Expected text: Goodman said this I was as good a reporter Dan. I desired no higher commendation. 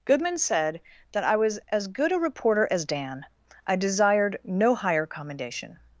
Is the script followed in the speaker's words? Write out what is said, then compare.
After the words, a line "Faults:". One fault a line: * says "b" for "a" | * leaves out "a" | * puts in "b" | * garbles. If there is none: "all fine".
Goodman said that I was as good a reporter as Dan. I desired no higher commendation.
Faults:
* says "that" for "this"
* puts in "as"